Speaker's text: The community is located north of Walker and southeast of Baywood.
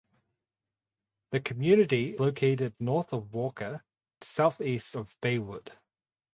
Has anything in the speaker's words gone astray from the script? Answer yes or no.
yes